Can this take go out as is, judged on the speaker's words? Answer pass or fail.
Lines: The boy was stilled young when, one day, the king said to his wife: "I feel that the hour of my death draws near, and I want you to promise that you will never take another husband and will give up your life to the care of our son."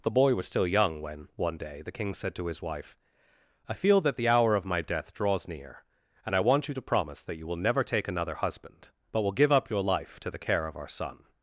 fail